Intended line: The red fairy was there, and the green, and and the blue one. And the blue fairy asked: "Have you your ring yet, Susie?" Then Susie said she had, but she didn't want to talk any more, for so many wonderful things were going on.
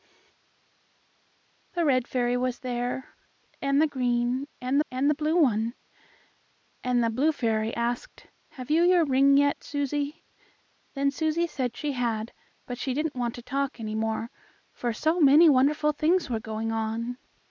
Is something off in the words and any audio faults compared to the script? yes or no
no